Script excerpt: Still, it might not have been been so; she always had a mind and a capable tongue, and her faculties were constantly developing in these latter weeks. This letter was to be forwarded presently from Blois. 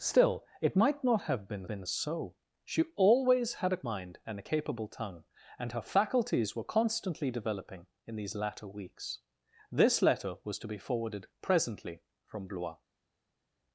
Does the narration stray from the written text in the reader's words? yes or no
no